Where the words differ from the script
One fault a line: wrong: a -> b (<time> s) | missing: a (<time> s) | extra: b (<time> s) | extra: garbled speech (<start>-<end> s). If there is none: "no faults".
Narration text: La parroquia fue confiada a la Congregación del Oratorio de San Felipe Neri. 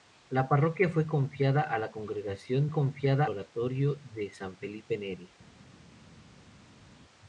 wrong: del -> confiada (2.7 s)